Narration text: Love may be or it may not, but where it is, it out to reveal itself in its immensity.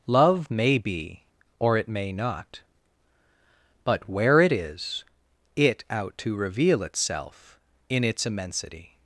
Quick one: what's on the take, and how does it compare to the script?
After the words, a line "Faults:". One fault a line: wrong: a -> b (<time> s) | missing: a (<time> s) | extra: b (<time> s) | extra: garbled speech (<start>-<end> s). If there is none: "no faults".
Love may be or it may not, but where it is, it out to reveal itself in its immensity.
Faults:
no faults